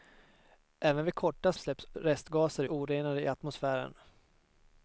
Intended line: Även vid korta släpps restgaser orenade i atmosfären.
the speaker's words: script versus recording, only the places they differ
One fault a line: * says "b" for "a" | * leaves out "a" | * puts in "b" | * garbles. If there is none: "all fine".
all fine